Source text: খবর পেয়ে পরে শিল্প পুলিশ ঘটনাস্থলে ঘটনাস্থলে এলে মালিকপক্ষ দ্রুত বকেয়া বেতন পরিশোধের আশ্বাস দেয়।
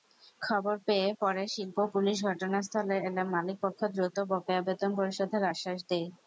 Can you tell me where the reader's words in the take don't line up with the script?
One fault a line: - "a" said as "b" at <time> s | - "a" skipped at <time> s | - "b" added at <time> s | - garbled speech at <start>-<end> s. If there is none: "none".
- "ঘটনাস্থলে" skipped at 3.0 s